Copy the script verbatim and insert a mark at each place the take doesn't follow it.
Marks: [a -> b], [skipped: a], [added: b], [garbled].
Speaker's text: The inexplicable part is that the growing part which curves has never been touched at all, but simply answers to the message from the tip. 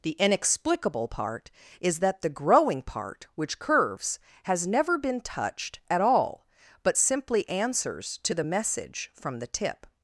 The inexplicable part is that the growing part which curves has never been touched at all, but simply answers to the message from the tip.